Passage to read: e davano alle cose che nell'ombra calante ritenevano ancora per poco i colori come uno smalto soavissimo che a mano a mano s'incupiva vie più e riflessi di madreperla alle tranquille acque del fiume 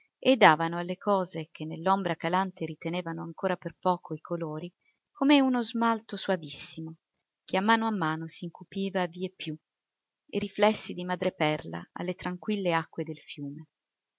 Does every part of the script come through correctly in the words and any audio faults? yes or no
yes